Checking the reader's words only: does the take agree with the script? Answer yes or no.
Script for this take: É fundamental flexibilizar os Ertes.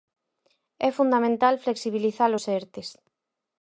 yes